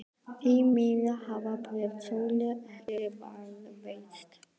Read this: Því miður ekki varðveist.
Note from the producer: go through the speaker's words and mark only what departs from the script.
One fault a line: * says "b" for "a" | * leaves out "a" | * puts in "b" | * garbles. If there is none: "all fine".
* puts in "hafa bréf Sólu"